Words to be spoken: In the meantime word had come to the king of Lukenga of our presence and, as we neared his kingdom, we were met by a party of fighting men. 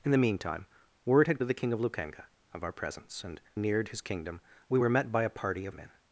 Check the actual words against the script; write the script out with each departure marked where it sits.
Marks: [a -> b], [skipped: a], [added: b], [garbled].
In the meantime word had [skipped: come] to the king of Lukenga of our presence and, [skipped: as we] neared his kingdom, we were met by a party of [skipped: fighting] men.